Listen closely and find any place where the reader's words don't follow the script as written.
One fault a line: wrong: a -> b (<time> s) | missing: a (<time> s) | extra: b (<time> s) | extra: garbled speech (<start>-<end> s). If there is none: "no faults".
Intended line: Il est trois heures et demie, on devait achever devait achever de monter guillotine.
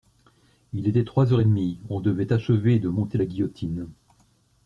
wrong: est -> était (0.9 s)
missing: devait achever (2.8 s)
extra: la (3.1 s)